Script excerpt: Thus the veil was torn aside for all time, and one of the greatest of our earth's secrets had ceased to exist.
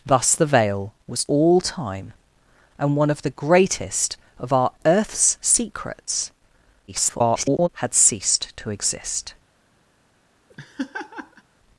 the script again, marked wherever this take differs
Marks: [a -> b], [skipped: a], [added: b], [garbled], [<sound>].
Thus the veil was [skipped: torn aside for] all time, and one of the greatest of our earth's secrets [garbled] had ceased to exist. [laugh]